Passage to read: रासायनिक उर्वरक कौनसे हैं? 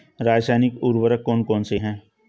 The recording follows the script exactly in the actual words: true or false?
false